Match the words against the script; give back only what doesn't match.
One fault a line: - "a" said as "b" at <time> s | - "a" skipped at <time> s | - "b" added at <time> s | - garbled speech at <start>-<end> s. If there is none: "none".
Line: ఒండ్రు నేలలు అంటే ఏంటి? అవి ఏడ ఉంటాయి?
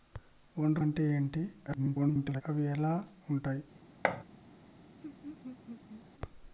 - "నేలలు" skipped at 0.8 s
- garbled speech at 1.7-2.4 s